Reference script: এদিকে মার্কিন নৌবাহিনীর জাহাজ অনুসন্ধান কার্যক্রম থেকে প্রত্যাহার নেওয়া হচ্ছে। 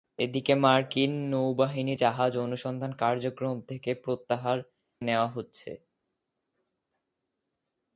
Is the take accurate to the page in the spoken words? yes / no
yes